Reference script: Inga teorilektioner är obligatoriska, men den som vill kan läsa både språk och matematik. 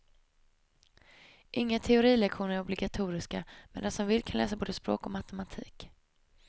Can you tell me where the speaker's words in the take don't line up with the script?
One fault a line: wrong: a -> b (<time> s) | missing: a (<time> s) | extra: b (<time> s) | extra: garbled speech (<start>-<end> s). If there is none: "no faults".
no faults